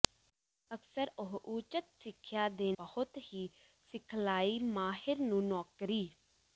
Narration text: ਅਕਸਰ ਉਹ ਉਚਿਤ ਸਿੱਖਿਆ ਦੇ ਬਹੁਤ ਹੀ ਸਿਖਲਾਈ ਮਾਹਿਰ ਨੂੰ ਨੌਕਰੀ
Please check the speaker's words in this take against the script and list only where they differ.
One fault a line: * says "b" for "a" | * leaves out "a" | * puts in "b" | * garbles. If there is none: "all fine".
all fine